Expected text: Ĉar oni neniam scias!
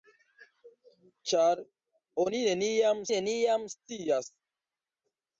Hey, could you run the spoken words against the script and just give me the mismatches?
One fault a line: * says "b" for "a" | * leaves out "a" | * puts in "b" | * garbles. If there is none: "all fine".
* puts in "neniam"